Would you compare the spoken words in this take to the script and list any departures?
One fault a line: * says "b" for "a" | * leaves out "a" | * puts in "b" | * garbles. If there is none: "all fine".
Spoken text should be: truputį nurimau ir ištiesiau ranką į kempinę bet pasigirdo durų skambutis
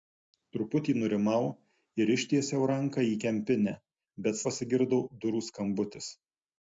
all fine